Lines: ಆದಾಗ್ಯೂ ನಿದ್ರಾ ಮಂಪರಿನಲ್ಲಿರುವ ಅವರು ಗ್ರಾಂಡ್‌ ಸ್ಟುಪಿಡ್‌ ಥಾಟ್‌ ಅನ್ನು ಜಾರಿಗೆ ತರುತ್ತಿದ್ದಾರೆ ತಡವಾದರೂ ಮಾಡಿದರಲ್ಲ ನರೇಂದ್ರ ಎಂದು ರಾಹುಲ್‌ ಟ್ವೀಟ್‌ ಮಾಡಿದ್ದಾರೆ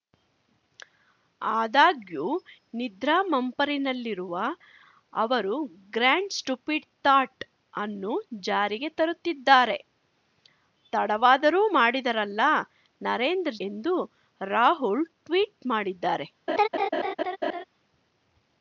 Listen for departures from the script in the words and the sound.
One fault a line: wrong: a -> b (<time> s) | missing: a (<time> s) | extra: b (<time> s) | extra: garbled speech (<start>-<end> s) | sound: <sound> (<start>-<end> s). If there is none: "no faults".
sound: laugh (16.5-17.6 s)